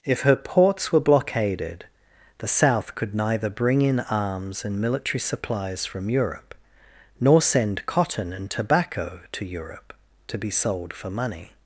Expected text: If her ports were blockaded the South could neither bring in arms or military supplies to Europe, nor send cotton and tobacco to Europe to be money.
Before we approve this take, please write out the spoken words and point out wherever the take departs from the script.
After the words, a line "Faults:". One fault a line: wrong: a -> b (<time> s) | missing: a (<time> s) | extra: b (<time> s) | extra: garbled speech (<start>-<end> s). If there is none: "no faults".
If her ports were blockaded the South could neither bring in arms and military supplies from Europe, nor send cotton and tobacco to Europe to be sold for money.
Faults:
wrong: or -> and (4.7 s)
wrong: to -> from (5.8 s)
extra: sold for (10.5 s)